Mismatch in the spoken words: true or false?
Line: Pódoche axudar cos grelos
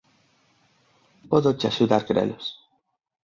true